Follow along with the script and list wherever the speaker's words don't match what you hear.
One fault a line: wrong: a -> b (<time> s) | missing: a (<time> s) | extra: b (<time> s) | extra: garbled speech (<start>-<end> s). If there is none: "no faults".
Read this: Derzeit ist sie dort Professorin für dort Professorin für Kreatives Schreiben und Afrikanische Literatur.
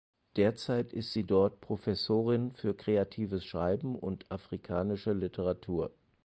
missing: dort Professorin für (2.8 s)